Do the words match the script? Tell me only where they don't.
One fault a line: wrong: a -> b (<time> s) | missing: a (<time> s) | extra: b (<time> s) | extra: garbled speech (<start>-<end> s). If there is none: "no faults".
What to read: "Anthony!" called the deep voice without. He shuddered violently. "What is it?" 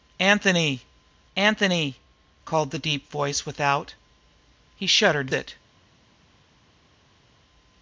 extra: anthony (1.4 s)
missing: violently What is (5.3 s)